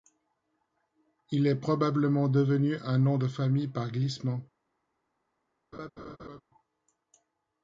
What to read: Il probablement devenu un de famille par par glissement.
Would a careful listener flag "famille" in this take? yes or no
no